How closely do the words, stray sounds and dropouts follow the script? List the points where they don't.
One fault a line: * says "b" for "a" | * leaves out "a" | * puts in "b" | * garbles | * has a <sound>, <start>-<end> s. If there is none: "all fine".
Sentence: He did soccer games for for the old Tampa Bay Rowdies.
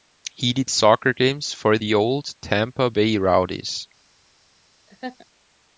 * leaves out "for"
* has a laugh, 4.9-5.3 s